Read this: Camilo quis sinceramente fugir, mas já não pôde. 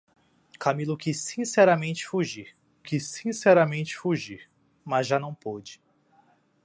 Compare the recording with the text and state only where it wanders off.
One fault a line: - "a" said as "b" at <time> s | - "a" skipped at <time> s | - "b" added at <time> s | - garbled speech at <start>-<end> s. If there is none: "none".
- "quis sinceramente fugir" added at 2.8 s